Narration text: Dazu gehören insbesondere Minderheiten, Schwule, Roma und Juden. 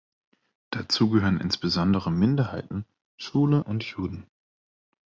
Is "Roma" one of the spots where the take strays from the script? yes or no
yes